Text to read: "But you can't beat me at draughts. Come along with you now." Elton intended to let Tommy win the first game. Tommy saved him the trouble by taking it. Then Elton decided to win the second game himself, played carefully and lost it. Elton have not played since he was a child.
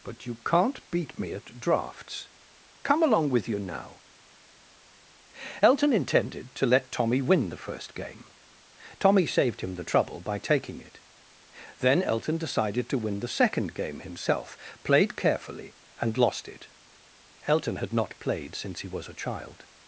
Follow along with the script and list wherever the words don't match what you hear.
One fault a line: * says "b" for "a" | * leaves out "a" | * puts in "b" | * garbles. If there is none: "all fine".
* says "had" for "have"